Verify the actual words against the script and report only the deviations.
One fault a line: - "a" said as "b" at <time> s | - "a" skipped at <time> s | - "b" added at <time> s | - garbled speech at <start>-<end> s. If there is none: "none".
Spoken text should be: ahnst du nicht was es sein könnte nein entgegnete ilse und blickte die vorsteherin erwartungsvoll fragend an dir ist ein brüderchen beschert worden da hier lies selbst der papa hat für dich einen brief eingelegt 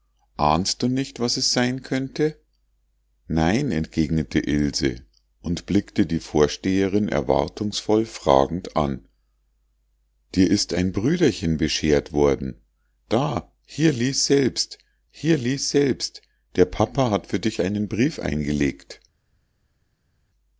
- "hier lies selbst" added at 15.1 s